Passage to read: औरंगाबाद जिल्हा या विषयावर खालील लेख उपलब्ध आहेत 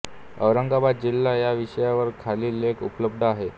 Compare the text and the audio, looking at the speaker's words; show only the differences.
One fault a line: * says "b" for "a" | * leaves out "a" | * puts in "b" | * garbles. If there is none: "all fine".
all fine